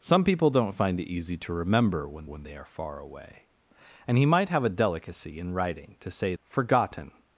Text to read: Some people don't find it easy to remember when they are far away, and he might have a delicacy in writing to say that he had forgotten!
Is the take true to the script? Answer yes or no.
no